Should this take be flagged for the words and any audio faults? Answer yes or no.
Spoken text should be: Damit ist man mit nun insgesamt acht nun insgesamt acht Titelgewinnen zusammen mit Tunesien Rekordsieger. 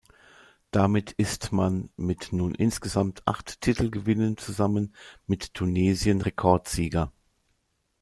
yes